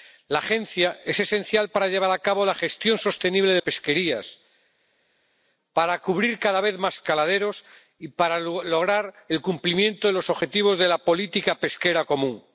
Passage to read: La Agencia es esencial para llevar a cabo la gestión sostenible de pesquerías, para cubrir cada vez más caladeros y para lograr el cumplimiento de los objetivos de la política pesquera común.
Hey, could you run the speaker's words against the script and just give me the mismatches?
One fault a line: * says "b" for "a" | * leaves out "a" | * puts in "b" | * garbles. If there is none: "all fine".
all fine